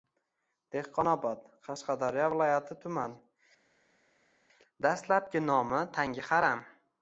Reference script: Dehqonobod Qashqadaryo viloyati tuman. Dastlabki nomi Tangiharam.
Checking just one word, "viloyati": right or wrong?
right